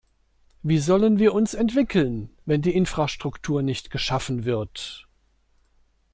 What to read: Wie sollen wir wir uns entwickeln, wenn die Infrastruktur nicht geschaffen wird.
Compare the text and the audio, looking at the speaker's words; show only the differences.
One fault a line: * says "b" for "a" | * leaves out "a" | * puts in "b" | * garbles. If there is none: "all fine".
* leaves out "wir"